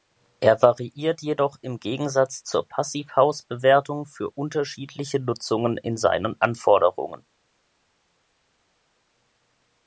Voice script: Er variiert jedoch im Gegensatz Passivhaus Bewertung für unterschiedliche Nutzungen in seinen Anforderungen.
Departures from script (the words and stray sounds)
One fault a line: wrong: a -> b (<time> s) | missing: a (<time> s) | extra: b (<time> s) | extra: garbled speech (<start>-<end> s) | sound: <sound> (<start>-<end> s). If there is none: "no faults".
extra: zur (2.4 s)